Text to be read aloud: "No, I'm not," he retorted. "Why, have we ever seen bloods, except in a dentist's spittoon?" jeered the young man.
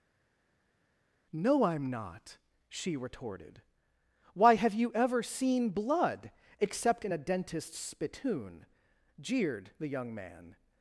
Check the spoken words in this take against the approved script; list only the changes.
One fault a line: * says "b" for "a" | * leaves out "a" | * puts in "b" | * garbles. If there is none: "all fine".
* says "she" for "he"
* says "you" for "we"
* says "blood" for "bloods"